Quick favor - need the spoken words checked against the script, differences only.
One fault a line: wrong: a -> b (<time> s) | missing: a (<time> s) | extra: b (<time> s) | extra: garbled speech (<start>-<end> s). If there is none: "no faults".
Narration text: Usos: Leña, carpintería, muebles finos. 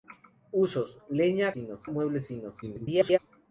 wrong: carpintería -> finos (1.5 s)
extra: garbled speech (2.6-3.2 s)